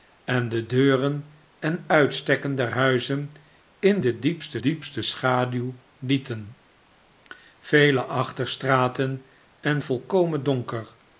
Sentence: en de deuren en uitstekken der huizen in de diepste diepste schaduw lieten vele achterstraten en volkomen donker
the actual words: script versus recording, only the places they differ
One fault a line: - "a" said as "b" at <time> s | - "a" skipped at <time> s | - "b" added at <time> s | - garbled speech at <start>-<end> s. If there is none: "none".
none